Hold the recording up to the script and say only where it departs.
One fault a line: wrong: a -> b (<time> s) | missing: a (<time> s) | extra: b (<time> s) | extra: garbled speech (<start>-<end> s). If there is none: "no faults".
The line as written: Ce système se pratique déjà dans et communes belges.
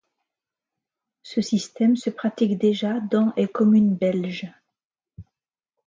no faults